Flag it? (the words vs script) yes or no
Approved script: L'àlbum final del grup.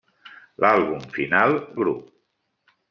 yes